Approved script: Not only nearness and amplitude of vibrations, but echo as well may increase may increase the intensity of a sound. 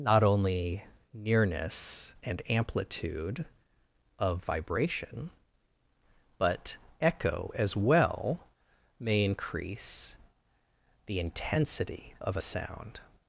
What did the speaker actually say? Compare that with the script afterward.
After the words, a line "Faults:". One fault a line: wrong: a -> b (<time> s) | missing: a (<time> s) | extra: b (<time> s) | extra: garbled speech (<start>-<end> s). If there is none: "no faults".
Not only nearness and amplitude of vibration, but echo as well may increase the intensity of a sound.
Faults:
wrong: vibrations -> vibration (4.4 s)
missing: may increase (10.1 s)